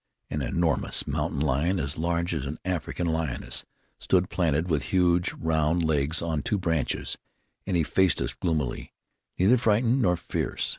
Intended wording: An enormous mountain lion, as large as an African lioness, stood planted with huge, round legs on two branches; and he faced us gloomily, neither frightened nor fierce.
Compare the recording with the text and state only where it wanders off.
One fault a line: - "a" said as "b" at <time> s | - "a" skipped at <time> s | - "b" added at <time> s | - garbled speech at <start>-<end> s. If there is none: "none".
none